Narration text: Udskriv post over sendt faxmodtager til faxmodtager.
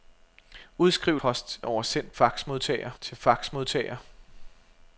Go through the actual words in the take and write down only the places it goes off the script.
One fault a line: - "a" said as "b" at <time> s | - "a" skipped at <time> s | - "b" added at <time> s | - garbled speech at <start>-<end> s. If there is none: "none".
none